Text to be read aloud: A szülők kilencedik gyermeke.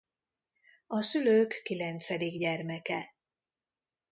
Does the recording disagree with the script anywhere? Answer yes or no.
no